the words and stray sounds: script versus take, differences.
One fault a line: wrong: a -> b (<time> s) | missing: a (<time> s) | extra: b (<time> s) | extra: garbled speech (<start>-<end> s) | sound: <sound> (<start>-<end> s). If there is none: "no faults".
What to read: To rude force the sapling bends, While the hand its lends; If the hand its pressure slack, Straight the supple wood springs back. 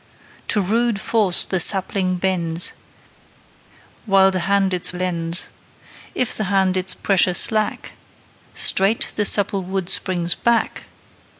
no faults